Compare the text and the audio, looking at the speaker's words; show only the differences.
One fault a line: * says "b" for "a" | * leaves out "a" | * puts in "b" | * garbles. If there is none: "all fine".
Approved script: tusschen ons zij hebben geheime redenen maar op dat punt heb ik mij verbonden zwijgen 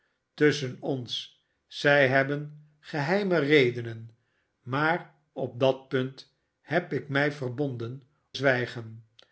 all fine